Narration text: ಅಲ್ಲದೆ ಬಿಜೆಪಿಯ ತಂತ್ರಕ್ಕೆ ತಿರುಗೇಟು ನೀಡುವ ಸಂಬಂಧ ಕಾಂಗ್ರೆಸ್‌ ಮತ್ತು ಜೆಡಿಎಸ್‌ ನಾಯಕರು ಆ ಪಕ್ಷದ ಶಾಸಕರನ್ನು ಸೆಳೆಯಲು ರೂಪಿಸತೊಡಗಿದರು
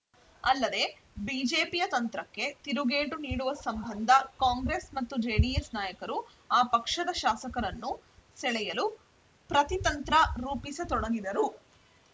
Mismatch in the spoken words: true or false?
true